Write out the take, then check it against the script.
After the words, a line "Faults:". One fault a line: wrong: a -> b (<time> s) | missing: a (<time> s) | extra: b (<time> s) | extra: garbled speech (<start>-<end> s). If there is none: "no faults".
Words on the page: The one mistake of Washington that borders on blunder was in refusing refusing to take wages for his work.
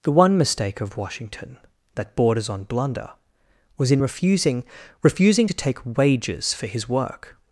The one mistake of Washington that borders on blunder was in refusing refusing to take wages for his work.
Faults:
no faults